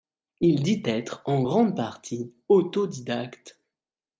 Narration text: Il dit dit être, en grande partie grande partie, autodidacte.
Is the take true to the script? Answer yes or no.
no